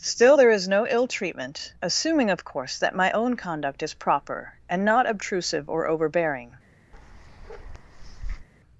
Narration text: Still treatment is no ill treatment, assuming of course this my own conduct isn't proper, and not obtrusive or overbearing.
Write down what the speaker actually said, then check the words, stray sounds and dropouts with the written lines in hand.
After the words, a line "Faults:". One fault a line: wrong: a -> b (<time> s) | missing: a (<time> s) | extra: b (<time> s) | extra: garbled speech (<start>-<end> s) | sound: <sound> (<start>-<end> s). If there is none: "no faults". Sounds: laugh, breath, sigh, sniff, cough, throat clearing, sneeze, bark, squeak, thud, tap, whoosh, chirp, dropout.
Still there is no ill treatment, assuming of course that my own conduct is proper, and not obtrusive or overbearing.
Faults:
wrong: treatment -> there (0.4 s)
wrong: this -> that (2.8 s)
wrong: isn't -> is (3.8 s)
sound: bark (6.9-8.5 s)